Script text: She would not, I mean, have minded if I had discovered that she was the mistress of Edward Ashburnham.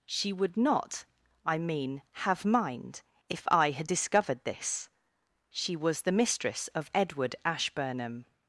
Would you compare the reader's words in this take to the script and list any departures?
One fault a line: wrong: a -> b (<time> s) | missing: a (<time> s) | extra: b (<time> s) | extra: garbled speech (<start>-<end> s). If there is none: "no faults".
wrong: minded -> mind (2.5 s)
wrong: that -> this (4.4 s)